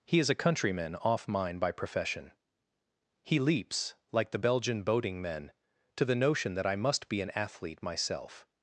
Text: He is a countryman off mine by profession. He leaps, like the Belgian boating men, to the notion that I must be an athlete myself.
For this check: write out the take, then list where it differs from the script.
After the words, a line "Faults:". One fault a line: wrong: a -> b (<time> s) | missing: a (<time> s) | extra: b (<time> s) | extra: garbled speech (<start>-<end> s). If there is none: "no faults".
He is a countryman off mine by profession. He leaps, like the Belgian boating men, to the notion that I must be an athlete myself.
Faults:
no faults